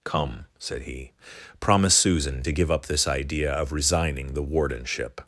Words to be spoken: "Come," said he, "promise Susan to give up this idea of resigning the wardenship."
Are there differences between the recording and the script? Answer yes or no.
no